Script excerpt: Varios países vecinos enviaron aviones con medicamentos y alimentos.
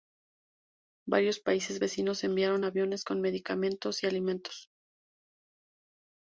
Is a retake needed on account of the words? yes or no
no